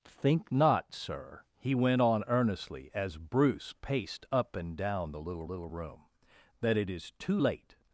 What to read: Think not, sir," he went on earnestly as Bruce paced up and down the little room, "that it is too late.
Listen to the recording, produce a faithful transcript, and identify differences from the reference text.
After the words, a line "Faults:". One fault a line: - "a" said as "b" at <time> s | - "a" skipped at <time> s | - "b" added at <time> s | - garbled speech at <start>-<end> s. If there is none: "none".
Think not, sir," he went on earnestly as Bruce paced up and down the little little room, "that it is too late.
Faults:
- "little" added at 5.4 s